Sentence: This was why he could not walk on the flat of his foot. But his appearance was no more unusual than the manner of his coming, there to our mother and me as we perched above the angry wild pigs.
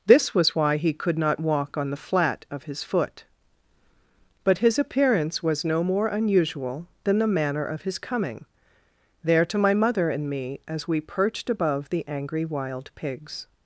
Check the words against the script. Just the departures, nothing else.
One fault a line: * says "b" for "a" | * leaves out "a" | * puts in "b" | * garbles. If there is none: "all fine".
* says "my" for "our"